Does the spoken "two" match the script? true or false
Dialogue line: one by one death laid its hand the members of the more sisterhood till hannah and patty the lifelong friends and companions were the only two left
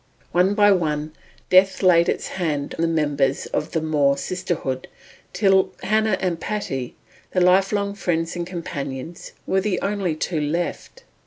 true